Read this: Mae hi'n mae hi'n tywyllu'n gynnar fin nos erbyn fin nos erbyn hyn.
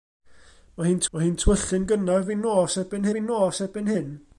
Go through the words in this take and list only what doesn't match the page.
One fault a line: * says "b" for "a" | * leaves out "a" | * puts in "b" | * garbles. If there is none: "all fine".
all fine